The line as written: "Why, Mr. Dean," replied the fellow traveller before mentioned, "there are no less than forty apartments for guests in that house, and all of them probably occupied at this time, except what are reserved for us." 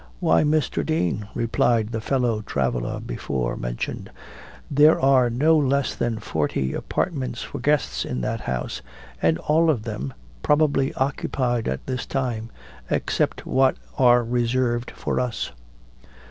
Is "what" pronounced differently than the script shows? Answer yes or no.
no